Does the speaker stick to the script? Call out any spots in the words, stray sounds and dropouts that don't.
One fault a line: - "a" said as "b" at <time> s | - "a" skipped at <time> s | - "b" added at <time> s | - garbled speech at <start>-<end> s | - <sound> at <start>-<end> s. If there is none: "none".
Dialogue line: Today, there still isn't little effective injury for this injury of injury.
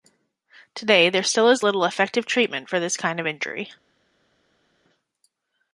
- "isn't" said as "is" at 1.5 s
- "injury" said as "treatment" at 2.3 s
- "injury" said as "kind" at 3.0 s